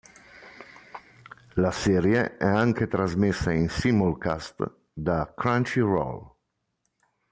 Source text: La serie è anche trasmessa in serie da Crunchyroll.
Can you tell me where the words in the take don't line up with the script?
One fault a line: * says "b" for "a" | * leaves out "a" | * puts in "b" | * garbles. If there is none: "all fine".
* says "simulcast" for "serie"